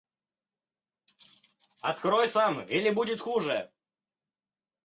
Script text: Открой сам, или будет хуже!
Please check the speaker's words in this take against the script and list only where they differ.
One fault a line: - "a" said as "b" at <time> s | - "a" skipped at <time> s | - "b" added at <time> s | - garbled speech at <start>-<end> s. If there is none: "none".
none